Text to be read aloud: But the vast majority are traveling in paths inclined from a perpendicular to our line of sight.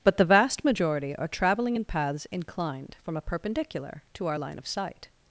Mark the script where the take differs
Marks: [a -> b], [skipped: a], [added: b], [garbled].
But the vast majority are traveling in paths inclined from a perpendicular to our line of sight.